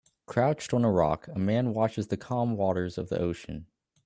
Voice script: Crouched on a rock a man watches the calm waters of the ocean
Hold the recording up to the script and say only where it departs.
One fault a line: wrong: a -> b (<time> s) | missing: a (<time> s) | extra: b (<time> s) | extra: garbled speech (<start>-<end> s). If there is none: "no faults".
no faults